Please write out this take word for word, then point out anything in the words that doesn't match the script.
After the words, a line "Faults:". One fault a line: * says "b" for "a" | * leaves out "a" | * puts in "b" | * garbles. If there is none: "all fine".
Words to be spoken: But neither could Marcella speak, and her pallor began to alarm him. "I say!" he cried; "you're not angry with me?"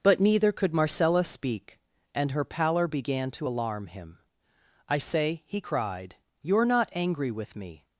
But neither could Marcella speak, and her pallor began to alarm him. "I say!" he cried; "you're not angry with me?"
Faults:
all fine